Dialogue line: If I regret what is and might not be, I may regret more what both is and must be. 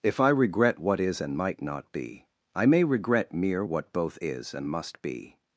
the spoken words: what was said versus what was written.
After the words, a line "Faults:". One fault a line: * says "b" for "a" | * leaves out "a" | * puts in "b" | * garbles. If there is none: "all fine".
If I regret what is and might not be, I may regret mere what both is and must be.
Faults:
* says "mere" for "more"